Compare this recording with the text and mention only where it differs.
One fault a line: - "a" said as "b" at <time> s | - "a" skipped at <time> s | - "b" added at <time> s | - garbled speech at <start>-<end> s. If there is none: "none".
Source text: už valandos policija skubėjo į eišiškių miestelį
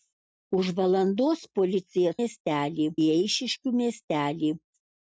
- "skubėjo" said as "miestelį" at 2.2 s